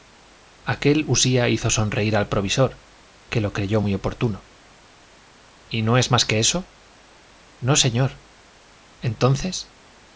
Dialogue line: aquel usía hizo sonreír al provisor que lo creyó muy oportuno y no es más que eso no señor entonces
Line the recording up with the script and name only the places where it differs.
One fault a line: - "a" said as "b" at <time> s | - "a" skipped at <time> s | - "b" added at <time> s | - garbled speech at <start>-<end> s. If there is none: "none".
none